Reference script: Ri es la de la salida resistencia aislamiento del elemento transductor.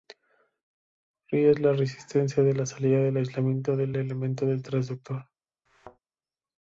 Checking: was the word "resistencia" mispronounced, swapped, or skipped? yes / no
yes